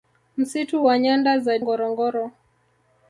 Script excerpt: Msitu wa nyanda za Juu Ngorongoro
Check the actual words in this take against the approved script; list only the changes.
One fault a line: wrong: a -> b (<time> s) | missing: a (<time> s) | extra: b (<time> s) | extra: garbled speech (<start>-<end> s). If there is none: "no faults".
missing: Juu (1.6 s)